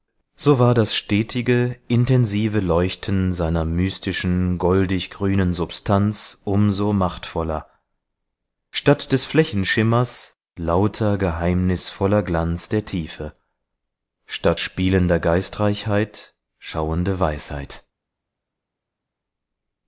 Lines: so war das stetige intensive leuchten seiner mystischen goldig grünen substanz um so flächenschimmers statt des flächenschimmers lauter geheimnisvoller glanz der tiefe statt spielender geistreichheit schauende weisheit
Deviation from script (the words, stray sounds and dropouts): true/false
true